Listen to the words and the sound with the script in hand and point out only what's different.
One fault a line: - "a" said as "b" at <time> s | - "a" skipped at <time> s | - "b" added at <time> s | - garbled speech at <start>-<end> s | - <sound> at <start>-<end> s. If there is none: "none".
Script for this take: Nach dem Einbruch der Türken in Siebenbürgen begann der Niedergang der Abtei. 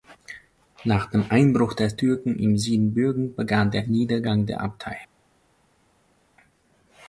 none